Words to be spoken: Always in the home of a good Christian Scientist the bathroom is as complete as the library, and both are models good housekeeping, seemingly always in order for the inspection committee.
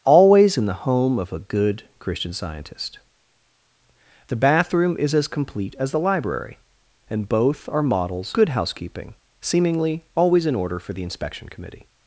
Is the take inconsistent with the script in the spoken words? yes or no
no